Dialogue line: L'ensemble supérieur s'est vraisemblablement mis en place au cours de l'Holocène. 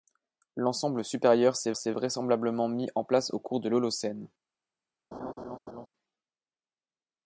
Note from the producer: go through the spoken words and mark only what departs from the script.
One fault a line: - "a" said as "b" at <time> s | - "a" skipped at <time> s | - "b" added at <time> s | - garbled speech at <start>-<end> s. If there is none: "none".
- "s'est" added at 1.8 s